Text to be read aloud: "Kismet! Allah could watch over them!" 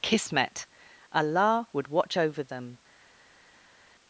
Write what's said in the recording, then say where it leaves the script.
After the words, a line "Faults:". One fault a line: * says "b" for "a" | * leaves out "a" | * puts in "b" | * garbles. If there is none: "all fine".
"Kismet! Allah would watch over them!"
Faults:
* says "would" for "could"